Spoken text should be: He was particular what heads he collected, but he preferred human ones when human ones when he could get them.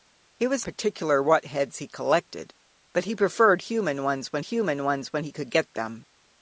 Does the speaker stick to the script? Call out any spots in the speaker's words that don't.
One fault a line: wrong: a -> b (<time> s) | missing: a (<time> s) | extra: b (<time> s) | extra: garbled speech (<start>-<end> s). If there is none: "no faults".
no faults